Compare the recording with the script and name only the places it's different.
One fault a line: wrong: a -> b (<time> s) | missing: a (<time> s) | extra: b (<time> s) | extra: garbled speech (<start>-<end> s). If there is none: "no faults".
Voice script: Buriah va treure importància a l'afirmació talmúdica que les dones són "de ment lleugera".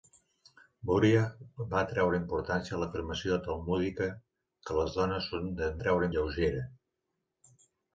wrong: ment -> treure (5.8 s)